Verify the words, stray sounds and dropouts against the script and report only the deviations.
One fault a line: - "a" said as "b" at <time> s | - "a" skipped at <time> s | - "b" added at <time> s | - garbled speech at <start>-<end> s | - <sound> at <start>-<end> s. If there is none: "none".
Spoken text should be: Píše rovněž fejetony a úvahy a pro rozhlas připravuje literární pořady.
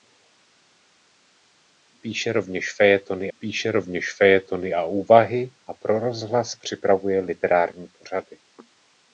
- "píše rovněž fejetony" added at 3.4 s